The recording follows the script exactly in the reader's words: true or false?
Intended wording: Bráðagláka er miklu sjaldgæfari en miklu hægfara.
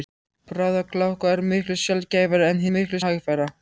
true